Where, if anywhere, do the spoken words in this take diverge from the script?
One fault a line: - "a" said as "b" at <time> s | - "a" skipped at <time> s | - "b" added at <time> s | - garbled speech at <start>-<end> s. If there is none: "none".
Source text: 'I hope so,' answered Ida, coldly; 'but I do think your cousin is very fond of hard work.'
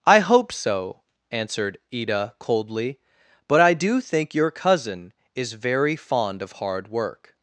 none